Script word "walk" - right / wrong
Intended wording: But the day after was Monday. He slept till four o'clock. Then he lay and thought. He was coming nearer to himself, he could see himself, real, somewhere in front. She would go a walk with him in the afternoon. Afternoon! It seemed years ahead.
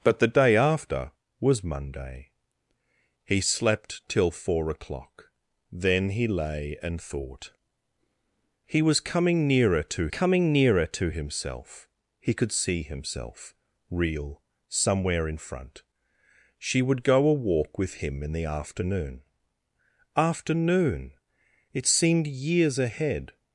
right